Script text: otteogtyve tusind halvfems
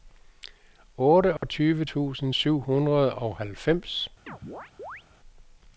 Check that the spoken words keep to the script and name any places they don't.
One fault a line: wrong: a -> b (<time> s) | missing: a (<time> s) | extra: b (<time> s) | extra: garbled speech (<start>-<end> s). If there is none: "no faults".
extra: syv hundrede og (2.3 s)